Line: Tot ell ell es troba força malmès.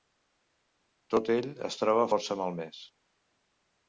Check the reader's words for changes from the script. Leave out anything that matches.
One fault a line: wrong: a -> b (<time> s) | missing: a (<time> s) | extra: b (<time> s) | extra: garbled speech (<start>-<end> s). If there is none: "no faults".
missing: ell (1.5 s)